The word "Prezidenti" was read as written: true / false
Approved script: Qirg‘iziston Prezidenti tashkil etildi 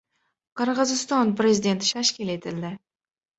true